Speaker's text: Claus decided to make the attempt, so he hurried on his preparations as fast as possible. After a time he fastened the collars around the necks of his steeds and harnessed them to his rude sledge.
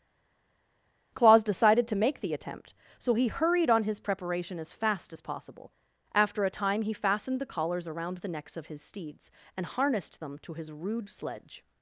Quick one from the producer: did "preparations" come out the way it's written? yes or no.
no